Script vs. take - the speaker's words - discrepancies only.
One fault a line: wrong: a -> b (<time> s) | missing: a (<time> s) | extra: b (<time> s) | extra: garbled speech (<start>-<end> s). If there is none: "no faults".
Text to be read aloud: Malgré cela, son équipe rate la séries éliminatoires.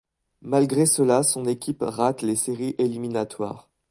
wrong: la -> les (2.2 s)